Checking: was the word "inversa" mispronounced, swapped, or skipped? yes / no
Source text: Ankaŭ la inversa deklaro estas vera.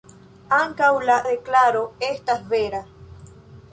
yes